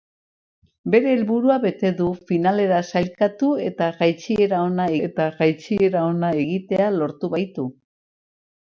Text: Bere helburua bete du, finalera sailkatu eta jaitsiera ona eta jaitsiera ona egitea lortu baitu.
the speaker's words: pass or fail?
pass